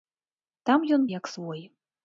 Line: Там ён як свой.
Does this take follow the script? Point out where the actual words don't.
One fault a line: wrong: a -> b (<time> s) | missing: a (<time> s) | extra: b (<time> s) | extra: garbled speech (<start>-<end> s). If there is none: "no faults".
no faults